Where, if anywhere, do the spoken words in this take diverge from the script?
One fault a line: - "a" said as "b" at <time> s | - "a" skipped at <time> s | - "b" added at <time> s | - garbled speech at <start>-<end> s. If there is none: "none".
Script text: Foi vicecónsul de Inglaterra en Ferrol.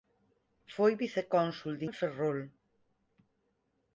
- "Inglaterra" skipped at 1.9 s